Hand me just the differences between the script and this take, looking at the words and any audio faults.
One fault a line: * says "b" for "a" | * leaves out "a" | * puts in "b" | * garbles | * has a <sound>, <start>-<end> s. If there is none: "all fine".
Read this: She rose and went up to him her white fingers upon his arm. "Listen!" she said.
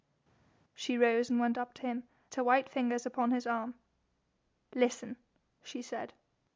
all fine